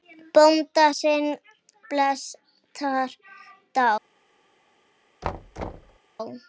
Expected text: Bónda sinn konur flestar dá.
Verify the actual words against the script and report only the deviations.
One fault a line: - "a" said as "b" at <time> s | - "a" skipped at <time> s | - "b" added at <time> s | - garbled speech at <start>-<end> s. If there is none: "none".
- "konur" skipped at 1.3 s